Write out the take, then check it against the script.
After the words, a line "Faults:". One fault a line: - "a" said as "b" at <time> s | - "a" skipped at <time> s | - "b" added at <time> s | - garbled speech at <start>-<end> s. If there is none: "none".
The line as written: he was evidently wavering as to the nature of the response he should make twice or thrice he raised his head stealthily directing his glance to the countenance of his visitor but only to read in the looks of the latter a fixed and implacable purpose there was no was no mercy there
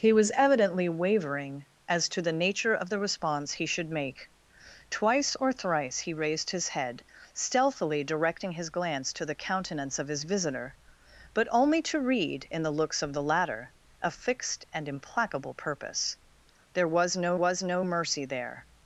he was evidently wavering as to the nature of the response he should make twice or thrice he raised his head stealthily directing his glance to the countenance of his visitor but only to read in the looks of the latter a fixed and implacable purpose there was no was no mercy there
Faults:
none